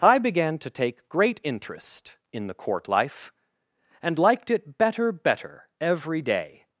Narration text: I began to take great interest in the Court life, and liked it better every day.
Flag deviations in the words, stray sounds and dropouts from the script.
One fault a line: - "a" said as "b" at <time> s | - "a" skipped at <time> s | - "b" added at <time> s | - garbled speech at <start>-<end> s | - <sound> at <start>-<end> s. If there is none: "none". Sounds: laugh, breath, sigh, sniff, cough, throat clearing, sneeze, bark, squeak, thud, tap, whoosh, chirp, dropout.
- "better" added at 5.1 s